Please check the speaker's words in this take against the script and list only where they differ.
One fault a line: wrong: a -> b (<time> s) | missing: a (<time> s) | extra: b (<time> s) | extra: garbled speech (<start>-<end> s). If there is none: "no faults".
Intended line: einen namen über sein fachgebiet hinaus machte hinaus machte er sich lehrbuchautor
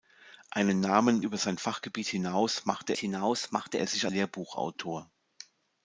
no faults